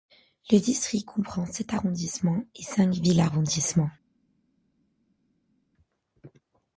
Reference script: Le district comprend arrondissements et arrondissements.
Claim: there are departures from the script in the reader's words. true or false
true